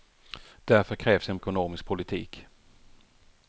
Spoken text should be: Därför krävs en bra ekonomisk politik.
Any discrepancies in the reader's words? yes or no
yes